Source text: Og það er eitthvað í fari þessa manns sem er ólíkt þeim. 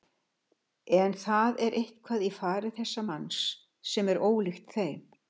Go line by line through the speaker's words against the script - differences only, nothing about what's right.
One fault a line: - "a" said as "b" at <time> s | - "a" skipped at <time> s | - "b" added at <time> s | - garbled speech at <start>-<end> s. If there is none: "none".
- "Og" said as "En" at 1.0 s